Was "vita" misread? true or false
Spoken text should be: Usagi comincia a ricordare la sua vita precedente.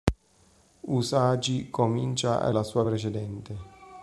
true